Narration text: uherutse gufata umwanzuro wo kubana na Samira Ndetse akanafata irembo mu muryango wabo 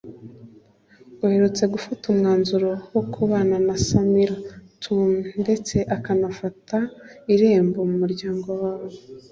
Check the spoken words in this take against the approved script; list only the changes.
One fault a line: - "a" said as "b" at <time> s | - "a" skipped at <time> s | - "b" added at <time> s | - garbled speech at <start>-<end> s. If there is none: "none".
- "Tumi" added at 4.8 s